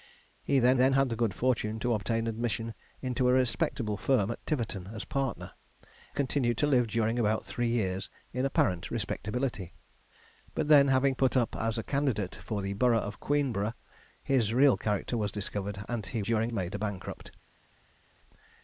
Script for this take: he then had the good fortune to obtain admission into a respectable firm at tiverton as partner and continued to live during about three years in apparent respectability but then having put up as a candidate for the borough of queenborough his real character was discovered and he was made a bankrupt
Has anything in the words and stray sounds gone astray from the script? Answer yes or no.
yes